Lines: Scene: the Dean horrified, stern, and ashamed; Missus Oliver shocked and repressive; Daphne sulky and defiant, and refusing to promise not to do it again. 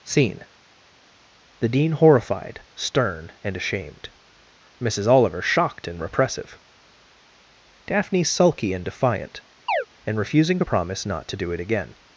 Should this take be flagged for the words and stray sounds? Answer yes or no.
yes